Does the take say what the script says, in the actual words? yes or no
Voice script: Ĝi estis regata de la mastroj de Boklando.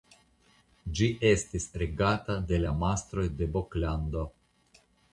yes